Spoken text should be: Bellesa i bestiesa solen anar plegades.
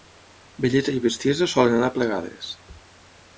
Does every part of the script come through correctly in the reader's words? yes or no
yes